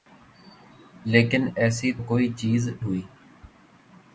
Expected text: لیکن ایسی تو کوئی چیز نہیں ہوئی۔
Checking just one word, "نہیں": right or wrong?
wrong